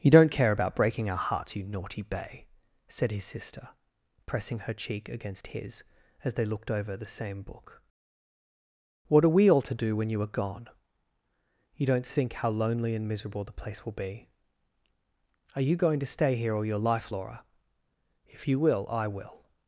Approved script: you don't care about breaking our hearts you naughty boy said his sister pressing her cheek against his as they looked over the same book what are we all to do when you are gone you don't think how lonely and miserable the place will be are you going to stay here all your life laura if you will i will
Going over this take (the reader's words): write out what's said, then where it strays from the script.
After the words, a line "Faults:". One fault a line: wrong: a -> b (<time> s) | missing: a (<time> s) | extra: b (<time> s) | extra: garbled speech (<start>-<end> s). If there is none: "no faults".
you don't care about breaking our hearts you naughty bay said his sister pressing her cheek against his as they looked over the same book what are we all to do when you are gone you don't think how lonely and miserable the place will be are you going to stay here all your life laura if you will i will
Faults:
wrong: boy -> bay (2.0 s)